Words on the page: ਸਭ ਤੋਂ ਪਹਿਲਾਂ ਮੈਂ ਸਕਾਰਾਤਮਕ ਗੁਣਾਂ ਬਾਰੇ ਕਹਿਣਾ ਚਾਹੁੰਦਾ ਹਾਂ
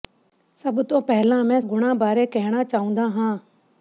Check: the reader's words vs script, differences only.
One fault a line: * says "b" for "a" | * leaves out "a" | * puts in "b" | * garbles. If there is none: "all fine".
* leaves out "ਸਕਾਰਾਤਮਕ"